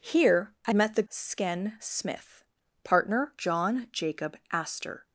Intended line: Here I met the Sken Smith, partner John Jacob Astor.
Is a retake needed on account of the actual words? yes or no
no